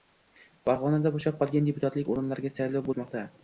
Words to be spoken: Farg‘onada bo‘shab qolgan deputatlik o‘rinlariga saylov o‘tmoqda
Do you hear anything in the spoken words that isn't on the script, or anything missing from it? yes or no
no